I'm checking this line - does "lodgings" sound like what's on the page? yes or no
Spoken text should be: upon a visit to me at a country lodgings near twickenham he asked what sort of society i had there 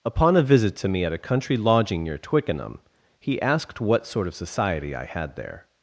no